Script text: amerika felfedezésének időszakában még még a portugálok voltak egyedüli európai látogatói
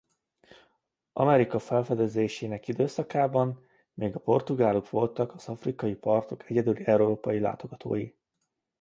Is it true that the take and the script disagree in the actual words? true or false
true